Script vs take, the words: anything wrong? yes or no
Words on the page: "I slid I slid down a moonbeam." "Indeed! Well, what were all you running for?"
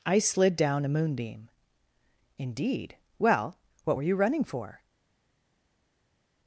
yes